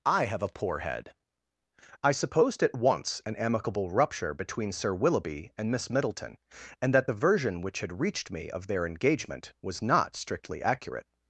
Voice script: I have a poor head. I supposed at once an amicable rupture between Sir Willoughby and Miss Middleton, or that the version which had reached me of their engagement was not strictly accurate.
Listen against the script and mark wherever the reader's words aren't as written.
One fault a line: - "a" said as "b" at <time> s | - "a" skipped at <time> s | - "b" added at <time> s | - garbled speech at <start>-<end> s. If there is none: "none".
- "or" said as "and" at 6.8 s